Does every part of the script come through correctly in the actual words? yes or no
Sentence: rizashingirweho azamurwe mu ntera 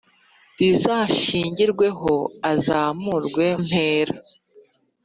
no